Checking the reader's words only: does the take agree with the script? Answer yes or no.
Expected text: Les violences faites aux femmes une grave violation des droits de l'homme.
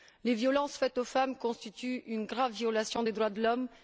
no